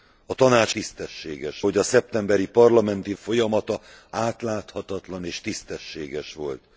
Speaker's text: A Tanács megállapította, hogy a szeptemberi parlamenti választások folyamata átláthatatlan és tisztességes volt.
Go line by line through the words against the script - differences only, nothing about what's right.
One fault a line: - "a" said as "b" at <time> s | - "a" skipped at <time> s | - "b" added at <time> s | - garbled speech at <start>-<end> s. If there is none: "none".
- "megállapította" said as "tisztességes" at 0.7 s
- "választások" skipped at 3.1 s